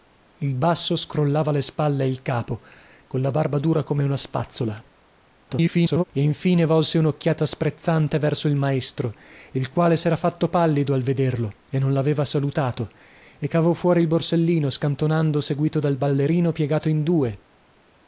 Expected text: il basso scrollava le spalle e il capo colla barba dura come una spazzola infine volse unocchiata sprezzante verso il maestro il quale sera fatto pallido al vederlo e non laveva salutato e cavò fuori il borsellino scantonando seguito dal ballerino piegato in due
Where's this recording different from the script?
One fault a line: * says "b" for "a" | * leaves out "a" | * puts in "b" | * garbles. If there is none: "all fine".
* garbles